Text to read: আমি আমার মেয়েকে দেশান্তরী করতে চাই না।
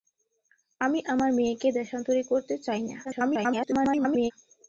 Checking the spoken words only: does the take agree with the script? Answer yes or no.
no